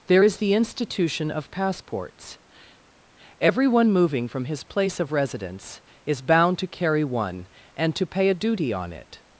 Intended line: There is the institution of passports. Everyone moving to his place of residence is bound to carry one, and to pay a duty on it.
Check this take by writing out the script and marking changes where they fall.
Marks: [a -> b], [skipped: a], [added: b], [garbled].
There is the institution of passports. Everyone moving [to -> from] his place of residence is bound to carry one, and to pay a duty on it.